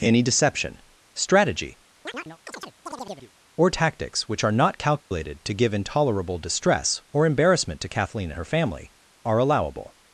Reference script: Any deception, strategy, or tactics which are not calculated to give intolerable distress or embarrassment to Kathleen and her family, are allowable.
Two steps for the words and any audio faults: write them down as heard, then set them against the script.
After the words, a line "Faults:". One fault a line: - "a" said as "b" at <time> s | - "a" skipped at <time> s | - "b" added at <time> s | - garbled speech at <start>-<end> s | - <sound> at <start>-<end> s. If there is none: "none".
Any deception, strategy, or tactics which are not calculated to give intolerable distress or embarrassment to Kathleen her family, are allowable.
Faults:
- chirp at 2.1-3.3 s
- dropout at 5.0-5.1 s
- "and" skipped at 8.3 s